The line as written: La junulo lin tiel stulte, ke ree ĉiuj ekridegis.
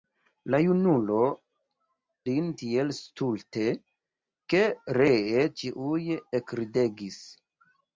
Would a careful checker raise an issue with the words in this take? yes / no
no